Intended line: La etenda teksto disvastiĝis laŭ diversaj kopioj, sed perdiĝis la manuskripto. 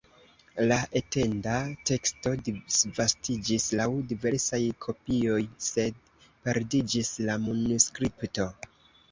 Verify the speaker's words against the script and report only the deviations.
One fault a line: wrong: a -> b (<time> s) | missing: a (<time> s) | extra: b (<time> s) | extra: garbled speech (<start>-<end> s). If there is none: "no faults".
no faults